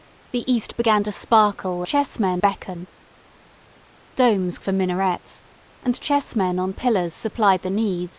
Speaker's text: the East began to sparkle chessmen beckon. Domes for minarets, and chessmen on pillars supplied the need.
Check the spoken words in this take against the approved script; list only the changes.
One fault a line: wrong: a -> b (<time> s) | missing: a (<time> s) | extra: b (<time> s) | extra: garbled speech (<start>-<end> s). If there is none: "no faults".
no faults